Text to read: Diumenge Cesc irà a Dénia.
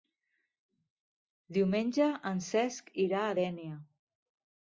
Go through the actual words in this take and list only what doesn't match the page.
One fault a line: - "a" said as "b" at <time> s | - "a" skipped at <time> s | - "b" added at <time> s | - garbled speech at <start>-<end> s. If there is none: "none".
- "en" added at 2.3 s